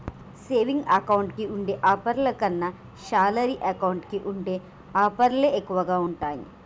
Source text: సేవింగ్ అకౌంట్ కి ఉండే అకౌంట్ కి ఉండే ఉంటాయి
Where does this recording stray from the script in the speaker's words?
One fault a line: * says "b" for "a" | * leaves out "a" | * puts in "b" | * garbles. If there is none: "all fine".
* puts in "ఆఫర్ల కన్నా శాలరీ"
* puts in "ఆఫర్లే ఎక్కువగా"